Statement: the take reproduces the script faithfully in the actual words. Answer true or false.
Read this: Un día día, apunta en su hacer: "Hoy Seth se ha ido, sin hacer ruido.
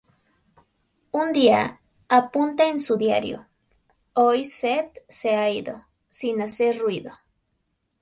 false